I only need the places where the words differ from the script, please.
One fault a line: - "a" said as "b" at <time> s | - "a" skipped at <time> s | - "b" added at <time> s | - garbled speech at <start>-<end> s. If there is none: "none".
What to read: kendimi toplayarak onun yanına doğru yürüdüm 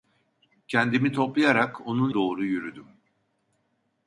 - "yanına" skipped at 2.1 s